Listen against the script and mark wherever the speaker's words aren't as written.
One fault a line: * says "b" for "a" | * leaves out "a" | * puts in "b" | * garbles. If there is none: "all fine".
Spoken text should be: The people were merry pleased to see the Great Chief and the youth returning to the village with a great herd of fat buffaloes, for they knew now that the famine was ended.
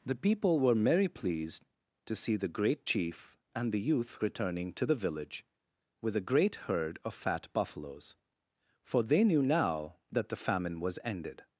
all fine